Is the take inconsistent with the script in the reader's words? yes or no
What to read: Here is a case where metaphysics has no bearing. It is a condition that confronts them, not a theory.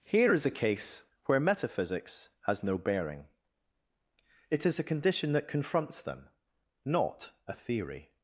no